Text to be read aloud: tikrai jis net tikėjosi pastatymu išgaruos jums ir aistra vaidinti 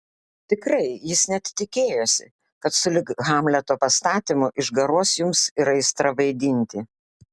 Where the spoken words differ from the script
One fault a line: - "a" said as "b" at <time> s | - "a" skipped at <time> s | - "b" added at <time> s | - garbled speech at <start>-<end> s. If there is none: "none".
- "kad sulig hamleto" added at 2.6 s